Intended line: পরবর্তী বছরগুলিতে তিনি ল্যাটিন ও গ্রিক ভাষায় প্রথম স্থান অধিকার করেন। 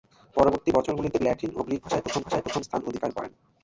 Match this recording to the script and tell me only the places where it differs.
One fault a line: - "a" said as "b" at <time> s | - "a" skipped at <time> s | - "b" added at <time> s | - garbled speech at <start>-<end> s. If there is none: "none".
- "তিনি" skipped at 1.2 s
- "ভাষায় প্রথম" added at 2.2 s